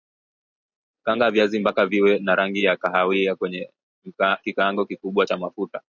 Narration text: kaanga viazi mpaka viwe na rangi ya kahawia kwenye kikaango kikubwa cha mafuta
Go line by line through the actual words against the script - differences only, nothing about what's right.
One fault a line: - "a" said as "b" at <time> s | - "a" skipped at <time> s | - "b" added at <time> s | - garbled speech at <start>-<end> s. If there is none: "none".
none